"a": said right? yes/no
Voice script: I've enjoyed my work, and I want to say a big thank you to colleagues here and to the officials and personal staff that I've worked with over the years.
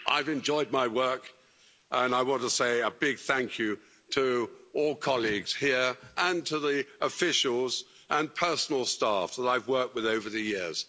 yes